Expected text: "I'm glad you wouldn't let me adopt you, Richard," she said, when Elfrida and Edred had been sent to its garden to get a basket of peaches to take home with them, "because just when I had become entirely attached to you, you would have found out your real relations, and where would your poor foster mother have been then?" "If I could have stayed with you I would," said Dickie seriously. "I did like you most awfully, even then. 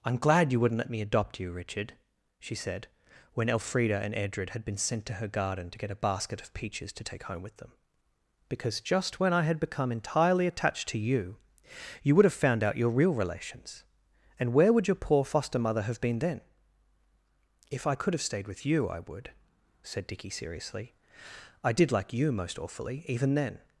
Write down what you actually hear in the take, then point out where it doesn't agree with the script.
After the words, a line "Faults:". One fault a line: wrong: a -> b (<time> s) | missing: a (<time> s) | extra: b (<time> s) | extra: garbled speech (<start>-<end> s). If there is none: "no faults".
"I'm glad you wouldn't let me adopt you, Richard," she said, when Elfrida and Edred had been sent to her garden to get a basket of peaches to take home with them, "because just when I had become entirely attached to you, you would have found out your real relations, and where would your poor foster mother have been then?" "If I could have stayed with you I would," said Dickie seriously. "I did like you most awfully, even then.
Faults:
wrong: its -> her (5.2 s)